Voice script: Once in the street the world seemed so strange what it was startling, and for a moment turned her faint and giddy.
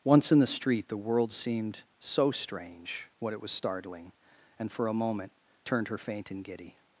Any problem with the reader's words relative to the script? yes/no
no